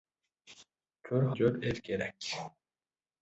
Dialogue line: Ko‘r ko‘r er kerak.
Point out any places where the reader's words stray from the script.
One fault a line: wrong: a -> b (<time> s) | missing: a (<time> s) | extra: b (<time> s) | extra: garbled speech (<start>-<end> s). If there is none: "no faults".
no faults